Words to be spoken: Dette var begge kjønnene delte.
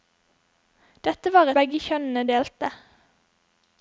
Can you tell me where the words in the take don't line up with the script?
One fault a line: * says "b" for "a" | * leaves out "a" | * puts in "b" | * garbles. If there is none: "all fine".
all fine